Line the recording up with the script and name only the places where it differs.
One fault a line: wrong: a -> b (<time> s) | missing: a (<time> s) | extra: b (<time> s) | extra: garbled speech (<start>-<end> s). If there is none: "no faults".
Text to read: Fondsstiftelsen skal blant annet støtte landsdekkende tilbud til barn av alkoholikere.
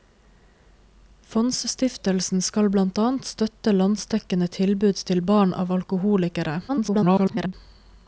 extra: garbled speech (6.7-7.5 s)